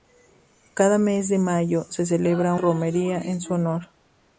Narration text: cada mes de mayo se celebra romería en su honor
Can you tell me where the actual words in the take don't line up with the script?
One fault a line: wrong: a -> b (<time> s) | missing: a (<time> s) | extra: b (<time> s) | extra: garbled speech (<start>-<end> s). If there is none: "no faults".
no faults